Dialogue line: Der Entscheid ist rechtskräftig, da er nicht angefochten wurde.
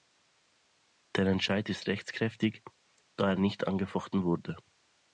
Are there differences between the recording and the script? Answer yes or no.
no